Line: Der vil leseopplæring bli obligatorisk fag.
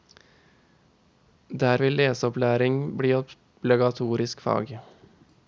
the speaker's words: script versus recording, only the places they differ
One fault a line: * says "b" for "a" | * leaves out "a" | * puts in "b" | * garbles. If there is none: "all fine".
all fine